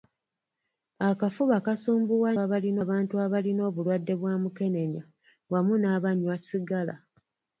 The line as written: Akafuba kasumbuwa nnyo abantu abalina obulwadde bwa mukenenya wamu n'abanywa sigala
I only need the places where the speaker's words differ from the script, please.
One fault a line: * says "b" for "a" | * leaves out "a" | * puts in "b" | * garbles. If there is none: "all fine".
* says "abalina" for "nnyo"